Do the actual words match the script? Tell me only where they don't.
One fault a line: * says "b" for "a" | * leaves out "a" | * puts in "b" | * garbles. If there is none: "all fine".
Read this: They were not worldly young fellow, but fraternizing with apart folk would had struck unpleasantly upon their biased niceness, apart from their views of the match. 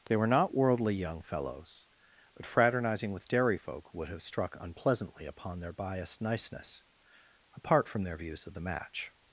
* says "fellows" for "fellow"
* says "dairy" for "apart"
* says "have" for "had"